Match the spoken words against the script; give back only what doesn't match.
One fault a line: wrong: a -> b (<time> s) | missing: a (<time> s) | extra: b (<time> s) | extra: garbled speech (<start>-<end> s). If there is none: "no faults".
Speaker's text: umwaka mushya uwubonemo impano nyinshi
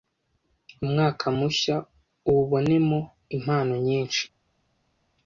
no faults